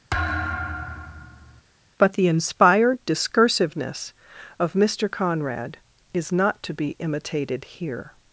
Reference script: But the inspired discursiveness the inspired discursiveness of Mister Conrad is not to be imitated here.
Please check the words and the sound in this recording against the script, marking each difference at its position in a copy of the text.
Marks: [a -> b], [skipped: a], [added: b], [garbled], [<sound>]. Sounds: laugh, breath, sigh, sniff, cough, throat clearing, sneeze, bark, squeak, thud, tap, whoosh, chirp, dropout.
[thud] But the inspired discursiveness [skipped: the inspired discursiveness] of Mister Conrad is not to be imitated here.